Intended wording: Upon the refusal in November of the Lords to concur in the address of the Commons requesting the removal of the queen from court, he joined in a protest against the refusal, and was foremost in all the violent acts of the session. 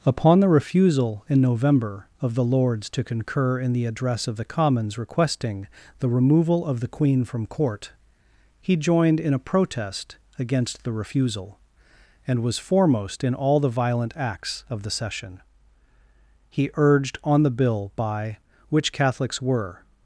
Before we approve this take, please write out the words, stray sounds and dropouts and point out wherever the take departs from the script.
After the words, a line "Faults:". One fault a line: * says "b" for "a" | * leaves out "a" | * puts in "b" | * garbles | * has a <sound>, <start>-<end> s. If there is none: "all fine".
Upon the refusal in November of the Lords to concur in the address of the Commons requesting the removal of the queen from court, he joined in a protest against the refusal, and was foremost in all the violent acts of the session. He urged on the bill by which Catholics were
Faults:
* puts in "He urged on the bill by which Catholics were"